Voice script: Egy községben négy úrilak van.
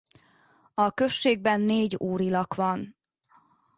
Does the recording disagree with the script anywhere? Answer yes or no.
yes